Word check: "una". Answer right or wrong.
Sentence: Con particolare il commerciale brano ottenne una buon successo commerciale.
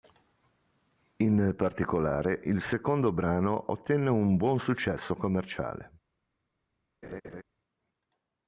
wrong